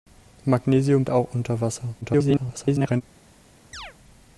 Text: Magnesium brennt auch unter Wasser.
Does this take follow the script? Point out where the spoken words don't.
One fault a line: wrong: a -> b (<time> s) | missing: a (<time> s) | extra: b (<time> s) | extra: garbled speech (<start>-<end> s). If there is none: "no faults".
missing: brennt (1.1 s)
extra: garbled speech (2.0-3.0 s)